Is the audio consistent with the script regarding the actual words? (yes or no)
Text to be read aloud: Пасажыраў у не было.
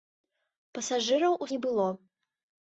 yes